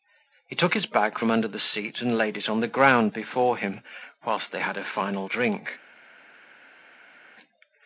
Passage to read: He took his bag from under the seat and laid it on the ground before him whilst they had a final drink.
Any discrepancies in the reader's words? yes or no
no